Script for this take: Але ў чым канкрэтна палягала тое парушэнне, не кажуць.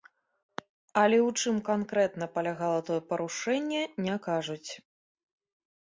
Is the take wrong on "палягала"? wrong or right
right